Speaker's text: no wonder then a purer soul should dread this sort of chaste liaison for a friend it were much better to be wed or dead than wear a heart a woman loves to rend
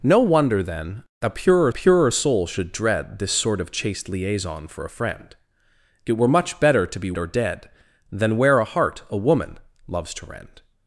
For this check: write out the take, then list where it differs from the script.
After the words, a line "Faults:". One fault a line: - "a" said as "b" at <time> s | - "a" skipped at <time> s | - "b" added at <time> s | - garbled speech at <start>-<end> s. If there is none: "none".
no wonder then a purer purer soul should dread this sort of chaste liaison for a friend it were much better to be or dead than wear a heart a woman loves to rend
Faults:
- "purer" added at 1.7 s
- "wed" skipped at 7.1 s